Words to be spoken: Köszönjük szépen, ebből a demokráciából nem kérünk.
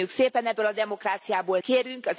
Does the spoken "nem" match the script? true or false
false